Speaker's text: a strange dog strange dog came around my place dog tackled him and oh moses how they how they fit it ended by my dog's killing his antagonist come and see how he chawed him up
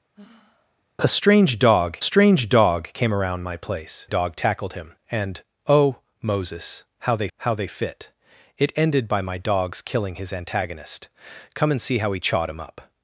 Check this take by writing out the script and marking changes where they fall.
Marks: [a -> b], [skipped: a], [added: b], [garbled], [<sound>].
[sigh] a strange dog strange dog came around my place dog tackled him and oh moses how they how they fit it ended by my dog's killing his antagonist come and see how he chawed him up